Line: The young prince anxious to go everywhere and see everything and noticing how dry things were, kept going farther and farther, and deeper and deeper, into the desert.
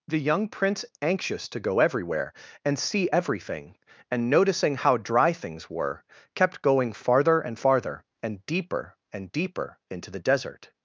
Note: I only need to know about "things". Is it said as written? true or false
true